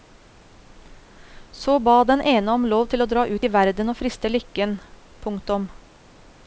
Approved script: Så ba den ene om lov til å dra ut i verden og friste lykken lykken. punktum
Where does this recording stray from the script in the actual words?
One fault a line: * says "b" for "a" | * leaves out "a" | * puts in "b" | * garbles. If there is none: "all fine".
* leaves out "lykken"